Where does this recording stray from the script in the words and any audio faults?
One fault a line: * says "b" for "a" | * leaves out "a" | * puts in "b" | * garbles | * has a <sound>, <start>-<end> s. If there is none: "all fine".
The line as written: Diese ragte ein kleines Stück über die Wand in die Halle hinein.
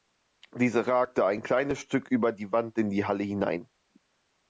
all fine